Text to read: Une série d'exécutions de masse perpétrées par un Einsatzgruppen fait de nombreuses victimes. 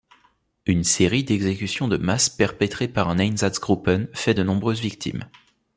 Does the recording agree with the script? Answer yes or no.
yes